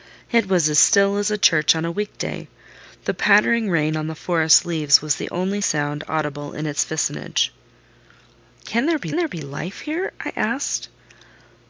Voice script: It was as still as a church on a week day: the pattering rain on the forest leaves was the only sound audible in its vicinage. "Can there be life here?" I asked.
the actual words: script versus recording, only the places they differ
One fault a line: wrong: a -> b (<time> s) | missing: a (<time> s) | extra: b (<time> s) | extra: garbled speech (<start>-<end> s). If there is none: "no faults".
extra: there be (9.1 s)